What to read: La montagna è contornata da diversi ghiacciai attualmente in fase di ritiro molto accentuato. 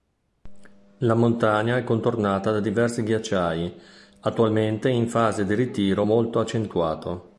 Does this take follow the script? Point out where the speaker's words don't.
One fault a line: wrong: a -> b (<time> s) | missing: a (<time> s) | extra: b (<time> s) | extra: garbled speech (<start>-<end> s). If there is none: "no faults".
no faults